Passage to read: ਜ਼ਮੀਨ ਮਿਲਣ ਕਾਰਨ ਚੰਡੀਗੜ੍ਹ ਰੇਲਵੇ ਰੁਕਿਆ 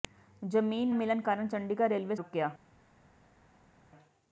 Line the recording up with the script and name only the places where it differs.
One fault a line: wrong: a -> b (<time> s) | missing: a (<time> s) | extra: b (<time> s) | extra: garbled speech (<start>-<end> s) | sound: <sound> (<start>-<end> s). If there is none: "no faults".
no faults